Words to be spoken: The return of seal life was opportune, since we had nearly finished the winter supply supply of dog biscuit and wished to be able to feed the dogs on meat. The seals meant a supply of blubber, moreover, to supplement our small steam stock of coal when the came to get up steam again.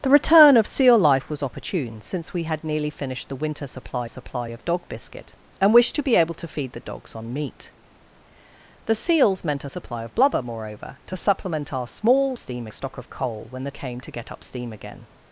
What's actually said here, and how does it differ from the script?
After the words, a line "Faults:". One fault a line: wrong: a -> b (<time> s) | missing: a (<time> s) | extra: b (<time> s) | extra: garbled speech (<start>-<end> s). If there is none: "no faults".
The return of seal life was opportune, since we had nearly finished the winter supply supply of dog biscuit and wished to be able to feed the dogs on meat. The seals meant a supply of blubber, moreover, to supplement our small steam stock of coal when the came to get up steam again.
Faults:
no faults